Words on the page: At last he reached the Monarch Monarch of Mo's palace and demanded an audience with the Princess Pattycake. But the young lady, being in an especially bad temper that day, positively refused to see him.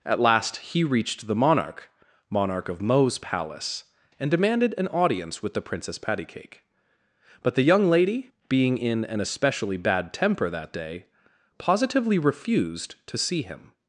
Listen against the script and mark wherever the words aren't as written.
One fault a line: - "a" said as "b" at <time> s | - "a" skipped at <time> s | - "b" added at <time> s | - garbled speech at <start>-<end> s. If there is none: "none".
none